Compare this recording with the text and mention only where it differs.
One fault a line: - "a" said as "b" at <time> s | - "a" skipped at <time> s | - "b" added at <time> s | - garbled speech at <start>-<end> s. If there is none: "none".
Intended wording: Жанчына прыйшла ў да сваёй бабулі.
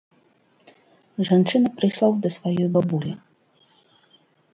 none